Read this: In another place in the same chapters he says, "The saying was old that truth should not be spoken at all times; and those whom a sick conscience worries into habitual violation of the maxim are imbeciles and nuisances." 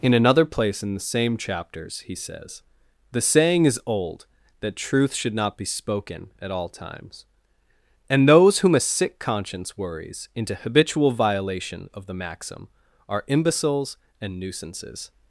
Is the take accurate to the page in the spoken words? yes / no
no